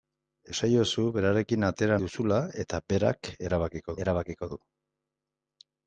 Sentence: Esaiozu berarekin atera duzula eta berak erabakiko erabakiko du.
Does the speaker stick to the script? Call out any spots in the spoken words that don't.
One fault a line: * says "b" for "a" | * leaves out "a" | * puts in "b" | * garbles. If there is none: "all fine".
all fine